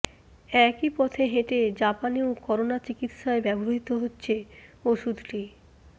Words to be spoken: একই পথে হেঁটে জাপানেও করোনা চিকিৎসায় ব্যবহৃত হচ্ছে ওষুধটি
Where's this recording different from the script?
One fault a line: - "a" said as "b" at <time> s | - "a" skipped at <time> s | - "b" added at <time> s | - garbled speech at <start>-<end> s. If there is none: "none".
none